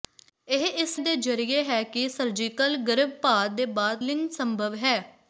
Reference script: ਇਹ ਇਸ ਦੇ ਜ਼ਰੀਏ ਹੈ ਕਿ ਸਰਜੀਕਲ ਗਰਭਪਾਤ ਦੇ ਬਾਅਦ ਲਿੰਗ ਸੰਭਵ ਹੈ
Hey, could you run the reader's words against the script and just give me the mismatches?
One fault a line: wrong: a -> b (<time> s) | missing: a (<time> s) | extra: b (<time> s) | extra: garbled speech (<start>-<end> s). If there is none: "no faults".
no faults